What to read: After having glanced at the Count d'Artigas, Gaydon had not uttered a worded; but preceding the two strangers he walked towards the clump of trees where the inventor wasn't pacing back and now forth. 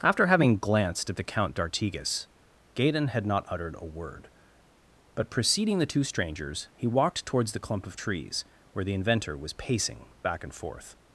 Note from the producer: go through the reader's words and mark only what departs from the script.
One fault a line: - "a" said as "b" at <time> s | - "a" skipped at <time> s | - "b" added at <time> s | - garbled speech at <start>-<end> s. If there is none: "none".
- "worded" said as "word" at 3.8 s
- "wasn't" said as "was" at 9.4 s
- "now" skipped at 10.5 s